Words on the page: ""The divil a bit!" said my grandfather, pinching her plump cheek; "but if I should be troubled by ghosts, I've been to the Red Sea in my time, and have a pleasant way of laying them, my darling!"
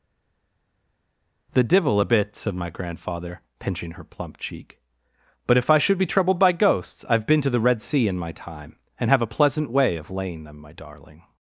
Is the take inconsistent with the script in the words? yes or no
no